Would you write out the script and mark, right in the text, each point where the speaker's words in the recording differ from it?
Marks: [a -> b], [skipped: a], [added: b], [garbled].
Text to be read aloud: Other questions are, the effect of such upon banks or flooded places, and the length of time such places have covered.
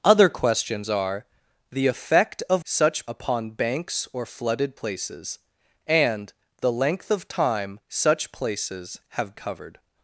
Other questions are, the effect of such upon banks or flooded places, and the length of time such places have covered.